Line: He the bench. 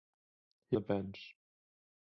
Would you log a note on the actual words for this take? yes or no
no